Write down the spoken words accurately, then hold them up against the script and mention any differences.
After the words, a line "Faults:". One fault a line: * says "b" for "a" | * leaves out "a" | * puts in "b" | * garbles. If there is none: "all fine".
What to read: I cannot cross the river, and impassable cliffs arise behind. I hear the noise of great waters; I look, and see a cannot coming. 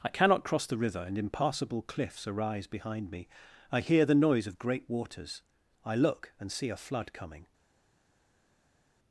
I cannot cross the river, and impassable cliffs arise behind me. I hear the noise of great waters; I look, and see a flood coming.
Faults:
* puts in "me"
* says "flood" for "cannot"